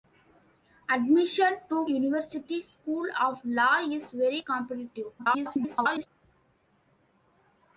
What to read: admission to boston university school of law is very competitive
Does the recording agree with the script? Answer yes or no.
no